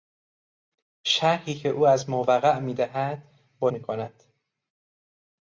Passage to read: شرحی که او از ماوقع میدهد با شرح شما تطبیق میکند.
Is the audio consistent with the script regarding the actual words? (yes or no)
no